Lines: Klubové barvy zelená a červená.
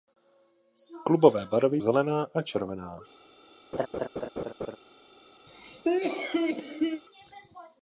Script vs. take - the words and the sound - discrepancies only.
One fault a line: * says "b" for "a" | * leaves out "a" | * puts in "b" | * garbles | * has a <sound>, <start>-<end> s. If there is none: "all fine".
* has a laugh, 3.7-4.8 s
* has a cough, 5.5-7.0 s